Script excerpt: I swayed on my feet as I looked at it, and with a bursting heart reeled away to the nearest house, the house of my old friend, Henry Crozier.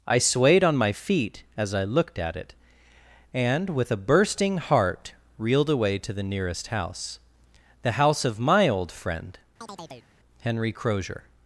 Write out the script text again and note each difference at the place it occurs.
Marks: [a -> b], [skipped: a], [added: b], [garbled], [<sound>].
I swayed on my feet as I looked at it, and with a bursting heart reeled away to the nearest house, the house of my old friend, [chirp] Henry Crozier.